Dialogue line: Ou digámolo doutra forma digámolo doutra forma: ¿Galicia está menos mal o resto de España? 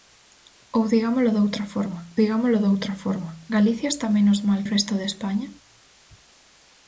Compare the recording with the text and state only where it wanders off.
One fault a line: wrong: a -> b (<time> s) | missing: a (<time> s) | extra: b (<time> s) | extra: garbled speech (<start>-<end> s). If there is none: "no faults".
no faults